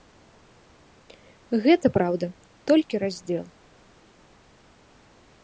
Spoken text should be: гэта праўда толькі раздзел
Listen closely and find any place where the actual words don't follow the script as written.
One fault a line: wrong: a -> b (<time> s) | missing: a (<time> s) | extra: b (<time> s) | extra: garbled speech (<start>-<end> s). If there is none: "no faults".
no faults